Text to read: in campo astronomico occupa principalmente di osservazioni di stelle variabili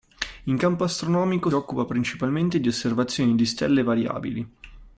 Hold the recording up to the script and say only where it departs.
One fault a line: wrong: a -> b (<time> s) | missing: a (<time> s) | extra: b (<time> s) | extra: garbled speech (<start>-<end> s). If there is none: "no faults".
no faults